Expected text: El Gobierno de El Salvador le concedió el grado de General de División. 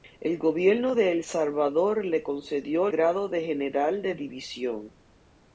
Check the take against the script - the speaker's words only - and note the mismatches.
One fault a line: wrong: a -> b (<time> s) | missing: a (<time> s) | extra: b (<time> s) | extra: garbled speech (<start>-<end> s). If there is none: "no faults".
missing: el (2.9 s)